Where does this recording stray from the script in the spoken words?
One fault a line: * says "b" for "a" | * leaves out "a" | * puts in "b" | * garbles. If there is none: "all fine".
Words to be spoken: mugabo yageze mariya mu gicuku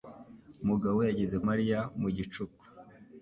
all fine